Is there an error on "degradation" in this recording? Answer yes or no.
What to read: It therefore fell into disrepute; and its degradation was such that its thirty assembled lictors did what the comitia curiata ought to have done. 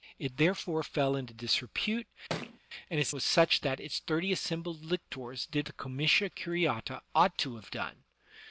yes